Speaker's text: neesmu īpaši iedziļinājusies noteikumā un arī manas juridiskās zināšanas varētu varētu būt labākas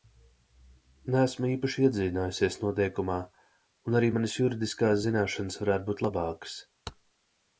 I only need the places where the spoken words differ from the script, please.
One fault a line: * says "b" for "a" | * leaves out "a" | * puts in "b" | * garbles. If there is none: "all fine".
* leaves out "varētu"